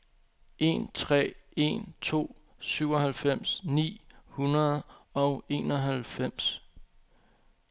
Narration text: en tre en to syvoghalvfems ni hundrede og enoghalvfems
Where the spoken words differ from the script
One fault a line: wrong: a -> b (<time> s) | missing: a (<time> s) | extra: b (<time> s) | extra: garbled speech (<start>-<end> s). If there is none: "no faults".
no faults